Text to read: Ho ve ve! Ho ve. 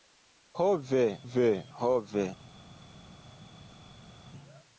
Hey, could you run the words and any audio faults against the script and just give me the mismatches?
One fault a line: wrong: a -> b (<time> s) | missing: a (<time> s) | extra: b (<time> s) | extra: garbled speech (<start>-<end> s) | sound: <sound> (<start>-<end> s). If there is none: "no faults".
no faults